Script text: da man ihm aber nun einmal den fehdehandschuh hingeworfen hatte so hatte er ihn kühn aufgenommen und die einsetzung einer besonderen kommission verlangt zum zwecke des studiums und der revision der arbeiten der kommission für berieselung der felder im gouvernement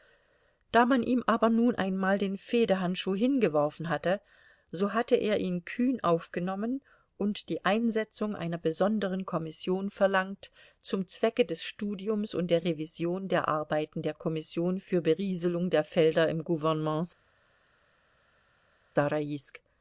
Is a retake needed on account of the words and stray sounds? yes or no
no